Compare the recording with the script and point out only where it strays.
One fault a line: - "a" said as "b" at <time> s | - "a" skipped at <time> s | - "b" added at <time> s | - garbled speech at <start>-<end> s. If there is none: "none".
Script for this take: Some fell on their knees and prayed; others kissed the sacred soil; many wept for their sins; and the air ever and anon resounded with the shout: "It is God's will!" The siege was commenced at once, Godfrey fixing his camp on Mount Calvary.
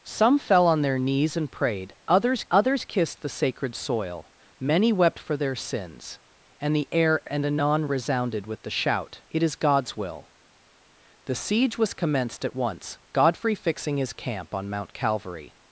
- "others" added at 2.5 s
- "ever" skipped at 7.2 s